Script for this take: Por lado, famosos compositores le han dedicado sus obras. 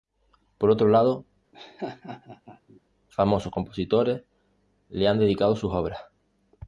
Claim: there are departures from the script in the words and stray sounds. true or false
true